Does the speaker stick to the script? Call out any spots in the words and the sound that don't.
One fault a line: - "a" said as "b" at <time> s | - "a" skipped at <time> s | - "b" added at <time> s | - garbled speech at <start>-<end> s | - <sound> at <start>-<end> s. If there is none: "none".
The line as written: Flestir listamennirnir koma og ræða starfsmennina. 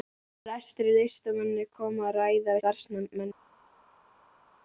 none